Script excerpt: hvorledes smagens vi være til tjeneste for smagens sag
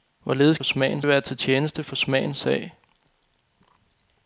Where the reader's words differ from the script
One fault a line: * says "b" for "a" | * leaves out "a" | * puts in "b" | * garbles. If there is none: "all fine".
all fine